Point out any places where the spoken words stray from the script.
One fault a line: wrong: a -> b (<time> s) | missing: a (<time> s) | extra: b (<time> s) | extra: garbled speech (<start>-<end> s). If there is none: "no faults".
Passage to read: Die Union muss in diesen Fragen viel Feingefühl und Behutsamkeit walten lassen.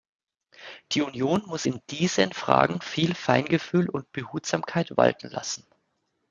no faults